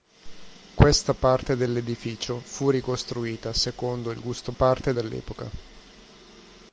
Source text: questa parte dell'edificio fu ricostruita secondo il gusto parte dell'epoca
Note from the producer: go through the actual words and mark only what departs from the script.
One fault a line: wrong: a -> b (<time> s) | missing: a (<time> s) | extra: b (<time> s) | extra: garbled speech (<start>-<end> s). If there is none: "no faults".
no faults